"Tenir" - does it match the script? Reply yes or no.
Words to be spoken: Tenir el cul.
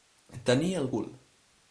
yes